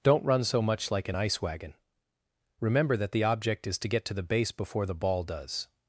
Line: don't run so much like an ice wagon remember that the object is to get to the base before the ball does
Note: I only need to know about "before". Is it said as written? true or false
true